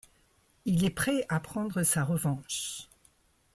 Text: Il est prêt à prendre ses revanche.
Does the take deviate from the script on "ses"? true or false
true